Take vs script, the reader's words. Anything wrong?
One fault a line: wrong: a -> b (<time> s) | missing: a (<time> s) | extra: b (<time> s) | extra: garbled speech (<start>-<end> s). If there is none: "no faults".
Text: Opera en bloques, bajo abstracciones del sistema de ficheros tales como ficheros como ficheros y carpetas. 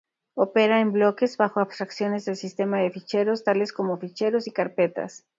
missing: como ficheros (4.5 s)